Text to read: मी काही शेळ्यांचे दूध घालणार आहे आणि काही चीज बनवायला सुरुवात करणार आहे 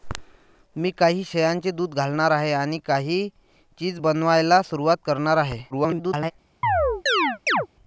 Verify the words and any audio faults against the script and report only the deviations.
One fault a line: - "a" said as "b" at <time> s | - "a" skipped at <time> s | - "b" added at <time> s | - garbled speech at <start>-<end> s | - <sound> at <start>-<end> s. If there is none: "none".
- garbled speech at 5.7-6.3 s
- chirp at 6.6-7.7 s